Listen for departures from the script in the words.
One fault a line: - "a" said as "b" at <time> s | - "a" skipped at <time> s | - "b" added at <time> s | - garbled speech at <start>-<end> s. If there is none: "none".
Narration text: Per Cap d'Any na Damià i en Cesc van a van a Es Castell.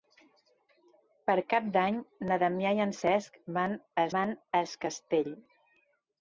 none